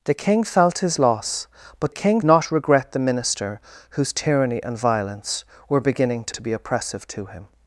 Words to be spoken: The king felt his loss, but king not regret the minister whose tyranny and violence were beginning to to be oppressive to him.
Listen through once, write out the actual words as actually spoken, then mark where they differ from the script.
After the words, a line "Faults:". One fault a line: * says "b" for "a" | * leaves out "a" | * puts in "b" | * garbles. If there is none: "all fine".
The king felt his loss, but king not regret the minister whose tyranny and violence were beginning to to be oppressive to him.
Faults:
all fine